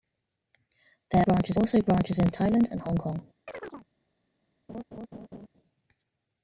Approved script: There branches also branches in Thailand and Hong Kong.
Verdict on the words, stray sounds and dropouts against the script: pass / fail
fail